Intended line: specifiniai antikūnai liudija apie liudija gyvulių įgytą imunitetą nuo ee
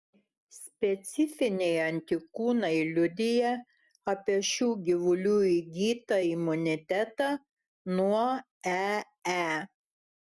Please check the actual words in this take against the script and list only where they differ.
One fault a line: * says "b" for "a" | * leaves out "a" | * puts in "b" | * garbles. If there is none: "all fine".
* says "šių" for "liudija"